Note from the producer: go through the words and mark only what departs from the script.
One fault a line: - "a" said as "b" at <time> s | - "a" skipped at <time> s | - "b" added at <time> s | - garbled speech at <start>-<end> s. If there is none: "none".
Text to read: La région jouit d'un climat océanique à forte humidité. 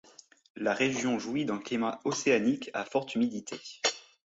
none